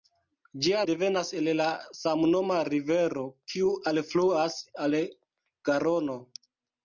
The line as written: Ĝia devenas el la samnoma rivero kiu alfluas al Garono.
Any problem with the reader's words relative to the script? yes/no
no